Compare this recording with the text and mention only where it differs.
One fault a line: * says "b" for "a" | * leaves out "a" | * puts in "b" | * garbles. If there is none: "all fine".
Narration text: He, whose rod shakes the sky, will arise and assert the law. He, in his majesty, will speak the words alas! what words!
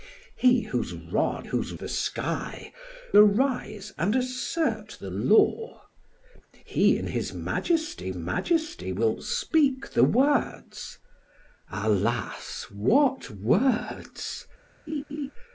* says "whose" for "shakes"
* leaves out "will"
* puts in "majesty"